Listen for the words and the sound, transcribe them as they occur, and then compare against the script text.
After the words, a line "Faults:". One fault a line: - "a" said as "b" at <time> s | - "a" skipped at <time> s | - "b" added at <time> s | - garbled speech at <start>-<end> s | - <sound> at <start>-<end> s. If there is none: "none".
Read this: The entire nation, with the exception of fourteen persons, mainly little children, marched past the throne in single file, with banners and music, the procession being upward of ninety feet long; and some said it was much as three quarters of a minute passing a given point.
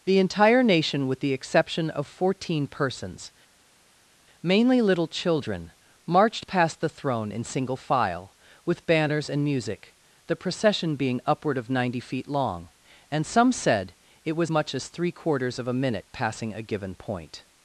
The entire nation, with the exception of fourteen persons, mainly little children, marched past the throne in single file, with banners and music, the procession being upward of ninety feet long; and some said it was much as three quarters of a minute passing a given point.
Faults:
none